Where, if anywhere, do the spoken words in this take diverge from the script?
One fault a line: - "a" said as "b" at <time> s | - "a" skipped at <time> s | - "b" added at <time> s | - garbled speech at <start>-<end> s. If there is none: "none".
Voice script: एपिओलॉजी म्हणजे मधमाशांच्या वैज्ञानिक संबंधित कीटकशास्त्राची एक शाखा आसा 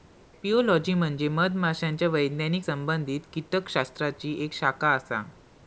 none